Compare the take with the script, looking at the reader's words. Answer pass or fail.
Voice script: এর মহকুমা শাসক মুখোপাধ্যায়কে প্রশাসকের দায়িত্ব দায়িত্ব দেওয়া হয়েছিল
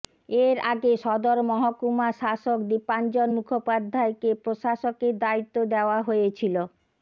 fail